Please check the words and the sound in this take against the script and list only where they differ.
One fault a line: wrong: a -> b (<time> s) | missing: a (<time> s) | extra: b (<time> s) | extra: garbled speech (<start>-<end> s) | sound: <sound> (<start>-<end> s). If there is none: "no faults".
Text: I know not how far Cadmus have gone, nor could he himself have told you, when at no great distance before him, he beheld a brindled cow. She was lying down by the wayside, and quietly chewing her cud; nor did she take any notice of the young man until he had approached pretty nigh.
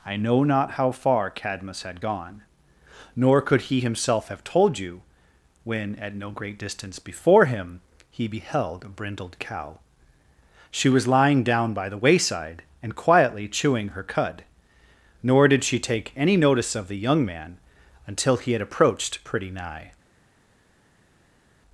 wrong: have -> had (1.8 s)